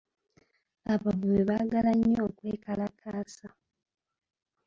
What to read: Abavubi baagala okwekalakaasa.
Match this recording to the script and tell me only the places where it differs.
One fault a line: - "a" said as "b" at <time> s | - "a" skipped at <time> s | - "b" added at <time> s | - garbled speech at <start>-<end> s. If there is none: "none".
- "nnyo" added at 2.0 s